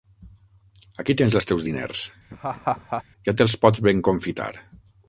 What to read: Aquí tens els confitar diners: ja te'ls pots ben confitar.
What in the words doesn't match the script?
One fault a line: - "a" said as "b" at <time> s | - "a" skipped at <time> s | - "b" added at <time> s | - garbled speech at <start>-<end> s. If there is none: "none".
- "confitar" said as "teus" at 1.5 s